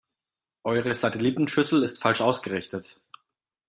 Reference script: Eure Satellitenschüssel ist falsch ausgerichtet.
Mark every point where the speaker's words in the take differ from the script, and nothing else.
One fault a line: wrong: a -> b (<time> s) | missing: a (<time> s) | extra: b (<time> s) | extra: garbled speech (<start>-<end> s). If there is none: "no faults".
no faults